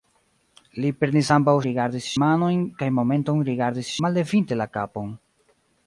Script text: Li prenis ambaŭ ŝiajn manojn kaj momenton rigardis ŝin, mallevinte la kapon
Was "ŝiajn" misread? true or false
true